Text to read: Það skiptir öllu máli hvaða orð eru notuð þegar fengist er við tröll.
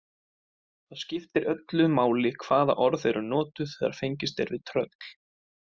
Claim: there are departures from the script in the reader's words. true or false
false